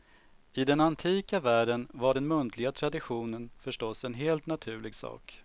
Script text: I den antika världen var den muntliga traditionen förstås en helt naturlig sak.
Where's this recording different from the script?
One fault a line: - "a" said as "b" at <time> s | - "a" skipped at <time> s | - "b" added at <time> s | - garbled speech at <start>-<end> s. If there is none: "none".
none